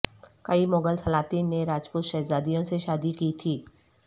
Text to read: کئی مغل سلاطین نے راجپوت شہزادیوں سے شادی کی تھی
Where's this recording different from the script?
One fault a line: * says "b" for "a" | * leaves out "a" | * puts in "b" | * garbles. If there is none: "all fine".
all fine